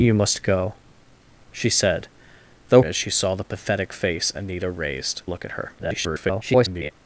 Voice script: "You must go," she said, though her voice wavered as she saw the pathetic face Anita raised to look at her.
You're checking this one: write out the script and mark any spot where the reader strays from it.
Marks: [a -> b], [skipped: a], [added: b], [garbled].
"You must go," she said, though [skipped: her voice wavered] as she saw the pathetic face Anita raised [skipped: to] look at her. [garbled]